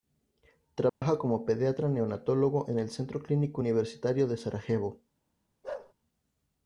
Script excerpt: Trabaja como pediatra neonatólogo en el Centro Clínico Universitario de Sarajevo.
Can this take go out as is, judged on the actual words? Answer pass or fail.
pass